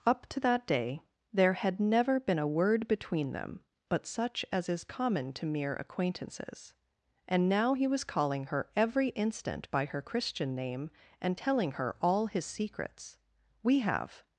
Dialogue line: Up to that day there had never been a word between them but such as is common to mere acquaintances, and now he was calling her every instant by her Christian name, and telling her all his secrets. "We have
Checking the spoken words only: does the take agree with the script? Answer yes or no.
yes